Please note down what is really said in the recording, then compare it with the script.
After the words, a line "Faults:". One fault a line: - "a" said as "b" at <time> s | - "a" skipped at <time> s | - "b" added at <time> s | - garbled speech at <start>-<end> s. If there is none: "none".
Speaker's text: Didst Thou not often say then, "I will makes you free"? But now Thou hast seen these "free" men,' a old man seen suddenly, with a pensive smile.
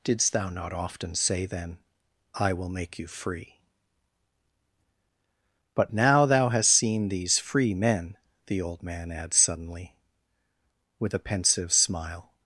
Didst Thou not often say then, "I will make you free"? But now Thou hast seen these "free" men,' the old man adds suddenly, with a pensive smile.
Faults:
- "makes" said as "make" at 2.7 s
- "a" said as "the" at 8.5 s
- "seen" said as "adds" at 9.1 s